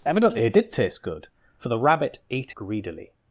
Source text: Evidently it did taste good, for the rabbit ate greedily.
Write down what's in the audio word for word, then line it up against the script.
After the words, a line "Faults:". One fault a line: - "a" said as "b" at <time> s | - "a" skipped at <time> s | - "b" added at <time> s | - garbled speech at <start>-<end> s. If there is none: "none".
Evidently it did taste good, for the rabbit ate greedily.
Faults:
none